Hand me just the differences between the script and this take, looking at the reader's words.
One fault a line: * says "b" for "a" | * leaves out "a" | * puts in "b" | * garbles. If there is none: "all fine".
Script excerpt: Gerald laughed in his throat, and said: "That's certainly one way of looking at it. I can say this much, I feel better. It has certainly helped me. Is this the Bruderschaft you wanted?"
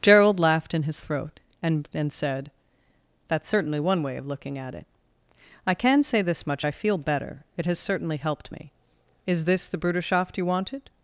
* puts in "and"